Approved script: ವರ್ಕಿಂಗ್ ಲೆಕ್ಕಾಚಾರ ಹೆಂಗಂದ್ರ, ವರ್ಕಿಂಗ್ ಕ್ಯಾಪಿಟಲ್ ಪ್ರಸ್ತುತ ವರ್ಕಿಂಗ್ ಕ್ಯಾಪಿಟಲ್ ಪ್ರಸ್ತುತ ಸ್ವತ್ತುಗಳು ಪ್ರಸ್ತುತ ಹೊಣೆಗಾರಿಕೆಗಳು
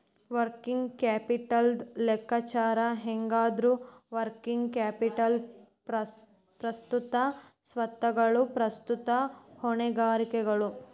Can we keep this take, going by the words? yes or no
no